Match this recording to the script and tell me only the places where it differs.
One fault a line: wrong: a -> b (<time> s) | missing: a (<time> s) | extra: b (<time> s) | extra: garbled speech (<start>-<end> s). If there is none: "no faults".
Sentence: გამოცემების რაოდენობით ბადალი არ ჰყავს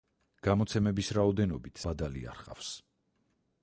no faults